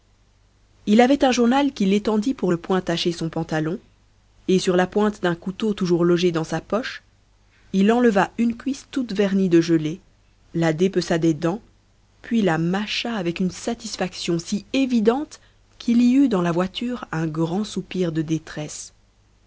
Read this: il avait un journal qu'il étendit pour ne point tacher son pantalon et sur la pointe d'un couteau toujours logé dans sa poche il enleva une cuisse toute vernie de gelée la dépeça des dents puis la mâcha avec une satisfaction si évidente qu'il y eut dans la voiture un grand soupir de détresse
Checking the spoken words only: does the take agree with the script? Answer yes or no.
yes